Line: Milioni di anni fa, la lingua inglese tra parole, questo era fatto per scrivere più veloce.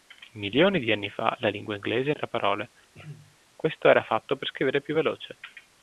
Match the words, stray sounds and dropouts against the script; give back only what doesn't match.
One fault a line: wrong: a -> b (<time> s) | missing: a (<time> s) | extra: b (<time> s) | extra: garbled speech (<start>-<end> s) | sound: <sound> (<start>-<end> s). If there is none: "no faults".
sound: throat clearing (2.9-3.4 s)